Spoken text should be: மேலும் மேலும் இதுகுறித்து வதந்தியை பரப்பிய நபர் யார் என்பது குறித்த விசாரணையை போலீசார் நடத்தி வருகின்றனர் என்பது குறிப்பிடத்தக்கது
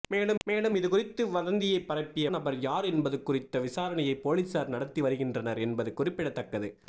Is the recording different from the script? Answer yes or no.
no